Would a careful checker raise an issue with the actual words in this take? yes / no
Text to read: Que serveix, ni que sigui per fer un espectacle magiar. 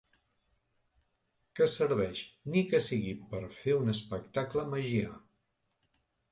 no